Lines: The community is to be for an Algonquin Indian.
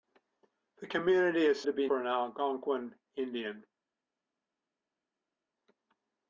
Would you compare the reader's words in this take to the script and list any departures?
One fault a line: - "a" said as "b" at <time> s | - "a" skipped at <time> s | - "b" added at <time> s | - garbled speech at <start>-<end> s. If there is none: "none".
none